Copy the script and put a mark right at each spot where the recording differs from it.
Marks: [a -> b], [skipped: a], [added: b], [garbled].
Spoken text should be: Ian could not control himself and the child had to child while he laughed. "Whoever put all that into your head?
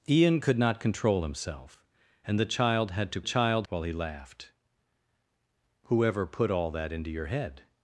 Ian could not control himself and the child had to child while he laughed. "Whoever put all that into your head?